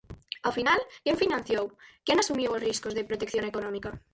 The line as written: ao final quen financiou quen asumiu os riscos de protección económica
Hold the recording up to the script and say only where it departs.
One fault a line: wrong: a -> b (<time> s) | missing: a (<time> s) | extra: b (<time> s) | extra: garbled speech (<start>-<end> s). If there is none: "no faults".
no faults